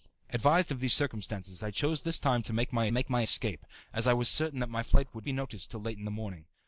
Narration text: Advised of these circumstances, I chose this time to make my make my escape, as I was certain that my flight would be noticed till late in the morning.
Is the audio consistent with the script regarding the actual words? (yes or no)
yes